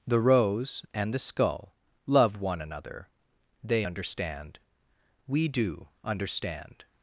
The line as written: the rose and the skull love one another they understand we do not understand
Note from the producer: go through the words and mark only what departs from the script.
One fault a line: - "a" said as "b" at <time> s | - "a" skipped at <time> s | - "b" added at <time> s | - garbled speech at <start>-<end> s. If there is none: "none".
- "not" skipped at 5.9 s